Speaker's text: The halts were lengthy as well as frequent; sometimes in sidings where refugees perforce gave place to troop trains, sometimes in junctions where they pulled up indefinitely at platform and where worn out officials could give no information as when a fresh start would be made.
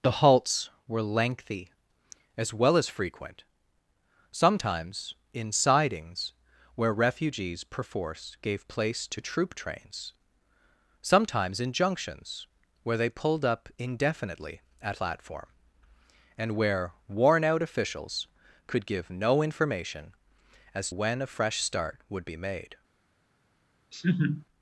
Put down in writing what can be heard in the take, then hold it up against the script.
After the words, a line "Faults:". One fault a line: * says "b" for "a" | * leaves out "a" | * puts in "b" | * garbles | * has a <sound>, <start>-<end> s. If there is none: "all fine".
The halts were lengthy as well as frequent; sometimes in sidings where refugees perforce gave place to troop trains, sometimes in junctions where they pulled up indefinitely at platform and where worn out officials could give no information as when a fresh start would be made.
Faults:
* has a laugh, 23.9-24.5 s